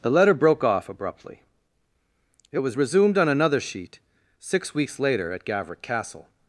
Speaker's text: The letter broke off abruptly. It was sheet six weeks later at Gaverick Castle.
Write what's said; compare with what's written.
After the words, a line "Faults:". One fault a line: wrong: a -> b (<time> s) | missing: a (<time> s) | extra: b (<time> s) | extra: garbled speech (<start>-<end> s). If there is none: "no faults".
The letter broke off abruptly. It was resumed on another sheet six weeks later at Gaverick Castle.
Faults:
extra: resumed on another (2.8 s)